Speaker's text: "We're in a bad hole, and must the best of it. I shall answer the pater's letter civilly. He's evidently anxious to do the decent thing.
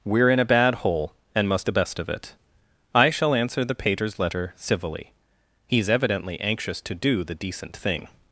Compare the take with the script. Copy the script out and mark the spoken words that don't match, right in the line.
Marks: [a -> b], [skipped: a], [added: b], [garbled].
"We're in a bad hole, and must the best of it. I shall answer the pater's letter civilly. He's evidently anxious to do the decent thing.